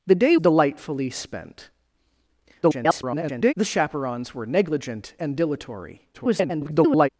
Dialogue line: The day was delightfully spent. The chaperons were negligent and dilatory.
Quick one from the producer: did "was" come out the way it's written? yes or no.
no